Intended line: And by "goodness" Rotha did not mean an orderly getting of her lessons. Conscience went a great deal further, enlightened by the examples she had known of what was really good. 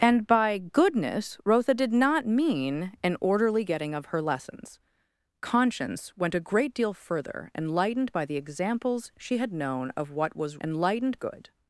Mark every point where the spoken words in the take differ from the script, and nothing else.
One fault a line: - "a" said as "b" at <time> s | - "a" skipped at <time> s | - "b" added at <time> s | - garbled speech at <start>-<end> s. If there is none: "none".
- "really" said as "enlightened" at 10.6 s